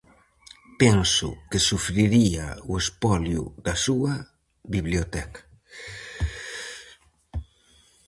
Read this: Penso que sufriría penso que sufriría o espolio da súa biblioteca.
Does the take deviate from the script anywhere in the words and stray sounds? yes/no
yes